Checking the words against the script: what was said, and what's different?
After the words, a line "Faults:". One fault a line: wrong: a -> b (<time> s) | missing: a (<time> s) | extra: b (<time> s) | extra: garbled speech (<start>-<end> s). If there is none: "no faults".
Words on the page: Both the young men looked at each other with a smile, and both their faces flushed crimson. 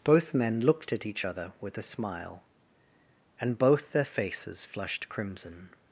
Both men looked at each other with a smile, and both their faces flushed crimson.
Faults:
missing: the young (0.3 s)